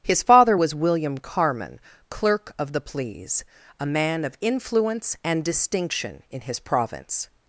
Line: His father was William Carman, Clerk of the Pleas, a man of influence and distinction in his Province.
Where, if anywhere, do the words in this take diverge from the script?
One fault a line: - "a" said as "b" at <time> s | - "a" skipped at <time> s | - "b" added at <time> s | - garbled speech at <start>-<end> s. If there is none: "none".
none